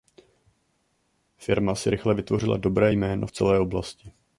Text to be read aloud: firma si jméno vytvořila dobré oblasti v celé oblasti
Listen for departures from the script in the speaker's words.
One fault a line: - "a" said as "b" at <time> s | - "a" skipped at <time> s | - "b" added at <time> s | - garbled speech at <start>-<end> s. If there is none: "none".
- "jméno" said as "rychle" at 1.9 s
- "oblasti" said as "jméno" at 2.9 s